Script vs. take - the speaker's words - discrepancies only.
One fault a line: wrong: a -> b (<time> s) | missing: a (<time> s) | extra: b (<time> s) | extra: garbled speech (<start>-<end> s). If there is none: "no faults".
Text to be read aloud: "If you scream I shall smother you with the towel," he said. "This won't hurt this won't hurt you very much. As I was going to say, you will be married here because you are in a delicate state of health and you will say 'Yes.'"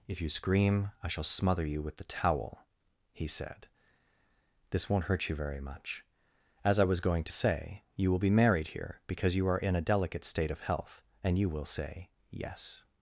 missing: this won't hurt (5.3 s)